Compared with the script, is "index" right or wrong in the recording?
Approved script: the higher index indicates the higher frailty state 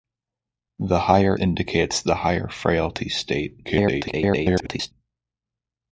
wrong